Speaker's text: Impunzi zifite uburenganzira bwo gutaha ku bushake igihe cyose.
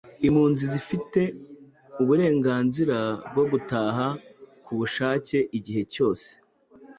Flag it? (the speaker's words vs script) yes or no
no